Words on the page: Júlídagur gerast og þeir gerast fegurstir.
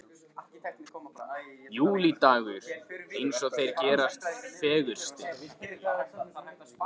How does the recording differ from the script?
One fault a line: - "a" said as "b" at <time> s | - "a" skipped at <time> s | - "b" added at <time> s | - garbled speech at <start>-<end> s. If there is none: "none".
- "gerast" said as "eins" at 3.2 s